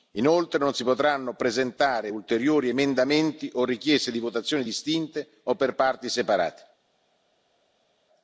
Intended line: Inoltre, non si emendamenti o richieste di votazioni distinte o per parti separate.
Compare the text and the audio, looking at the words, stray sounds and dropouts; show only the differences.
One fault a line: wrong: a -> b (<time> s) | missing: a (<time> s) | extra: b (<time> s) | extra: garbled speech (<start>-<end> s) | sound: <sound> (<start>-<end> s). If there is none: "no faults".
extra: potranno presentare ulteriori (0.8 s)